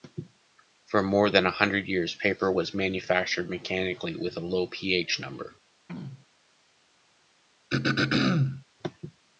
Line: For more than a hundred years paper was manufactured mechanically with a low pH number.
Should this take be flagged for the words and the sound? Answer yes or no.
yes